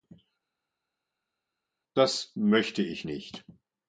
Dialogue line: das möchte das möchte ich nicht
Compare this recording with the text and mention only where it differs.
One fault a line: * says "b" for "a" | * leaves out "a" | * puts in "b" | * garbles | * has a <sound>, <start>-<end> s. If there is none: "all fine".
* leaves out "das möchte"